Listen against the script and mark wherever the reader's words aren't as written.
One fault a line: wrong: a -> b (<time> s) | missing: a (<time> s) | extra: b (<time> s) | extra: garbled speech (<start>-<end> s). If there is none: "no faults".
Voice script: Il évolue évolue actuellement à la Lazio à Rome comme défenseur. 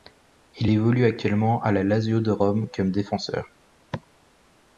missing: évolue (1.0 s)
wrong: à -> de (2.2 s)